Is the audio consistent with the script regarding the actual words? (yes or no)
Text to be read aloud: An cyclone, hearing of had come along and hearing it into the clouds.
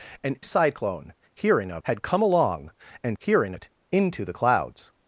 yes